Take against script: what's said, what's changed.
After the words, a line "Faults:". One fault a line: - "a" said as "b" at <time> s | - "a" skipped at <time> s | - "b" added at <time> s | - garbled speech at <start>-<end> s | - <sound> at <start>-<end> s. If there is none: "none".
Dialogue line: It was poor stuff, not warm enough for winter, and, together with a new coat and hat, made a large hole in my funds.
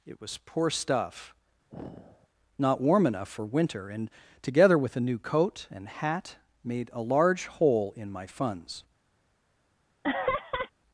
It was poor stuff, not warm enough for winter, and, together with a new coat and hat, made a large hole in my funds.
Faults:
- sigh at 1.7-2.3 s
- laugh at 10.0-10.7 s